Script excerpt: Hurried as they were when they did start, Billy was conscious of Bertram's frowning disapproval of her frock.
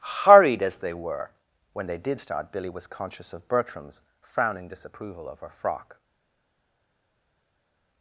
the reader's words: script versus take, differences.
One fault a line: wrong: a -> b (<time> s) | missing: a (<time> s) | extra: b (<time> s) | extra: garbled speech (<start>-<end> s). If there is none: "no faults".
no faults